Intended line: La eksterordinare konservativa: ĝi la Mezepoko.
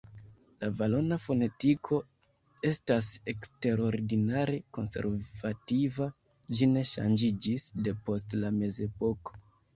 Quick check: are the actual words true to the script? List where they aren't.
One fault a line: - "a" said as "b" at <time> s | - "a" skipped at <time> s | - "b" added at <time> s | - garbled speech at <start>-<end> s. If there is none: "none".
- "valona fonetiko estas" added at 0.8 s
- "ne ŝanĝiĝis depost" added at 6.7 s